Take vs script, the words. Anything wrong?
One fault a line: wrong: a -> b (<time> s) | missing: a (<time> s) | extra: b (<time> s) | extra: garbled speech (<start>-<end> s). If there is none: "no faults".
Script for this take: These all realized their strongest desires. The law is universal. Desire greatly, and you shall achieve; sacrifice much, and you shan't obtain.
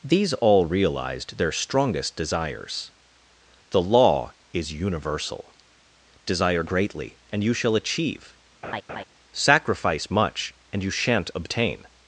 no faults